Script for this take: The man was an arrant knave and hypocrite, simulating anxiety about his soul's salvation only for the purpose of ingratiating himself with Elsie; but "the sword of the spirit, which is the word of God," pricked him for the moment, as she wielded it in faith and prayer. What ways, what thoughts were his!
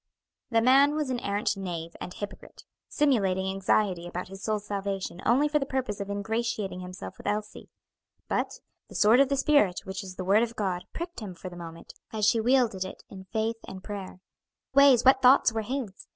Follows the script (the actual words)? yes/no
no